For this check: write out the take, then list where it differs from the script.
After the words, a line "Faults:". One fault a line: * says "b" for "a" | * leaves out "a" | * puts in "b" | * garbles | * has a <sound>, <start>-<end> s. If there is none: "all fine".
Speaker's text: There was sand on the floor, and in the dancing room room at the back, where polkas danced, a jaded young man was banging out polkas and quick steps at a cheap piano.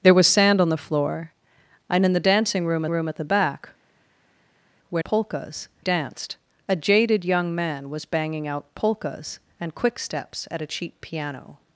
There was sand on the floor, and in the dancing room room at the back, where polkas danced, a jaded young man was banging out polkas and quick steps at a cheap piano.
Faults:
all fine